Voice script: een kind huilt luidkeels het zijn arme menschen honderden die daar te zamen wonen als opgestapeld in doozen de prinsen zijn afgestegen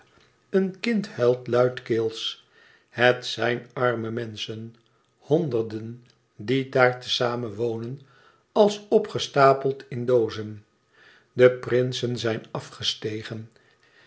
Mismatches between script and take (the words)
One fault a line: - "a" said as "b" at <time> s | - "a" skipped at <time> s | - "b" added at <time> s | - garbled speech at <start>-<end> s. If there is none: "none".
none